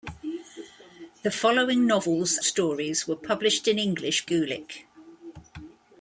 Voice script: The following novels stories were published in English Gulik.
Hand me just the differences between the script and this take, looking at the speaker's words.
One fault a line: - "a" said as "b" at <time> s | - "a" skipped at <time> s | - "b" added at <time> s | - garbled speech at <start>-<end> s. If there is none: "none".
none